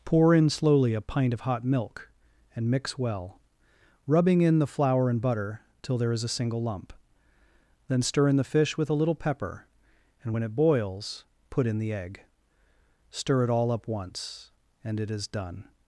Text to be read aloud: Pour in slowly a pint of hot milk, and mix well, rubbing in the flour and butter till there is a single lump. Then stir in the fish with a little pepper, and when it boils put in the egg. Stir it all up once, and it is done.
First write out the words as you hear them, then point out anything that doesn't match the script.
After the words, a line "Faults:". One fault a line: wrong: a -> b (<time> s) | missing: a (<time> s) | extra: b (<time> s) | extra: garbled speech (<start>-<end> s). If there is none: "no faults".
Pour in slowly a pint of hot milk, and mix well, rubbing in the flour and butter till there is a single lump. Then stir in the fish with a little pepper, and when it boils put in the egg. Stir it all up once, and it is done.
Faults:
no faults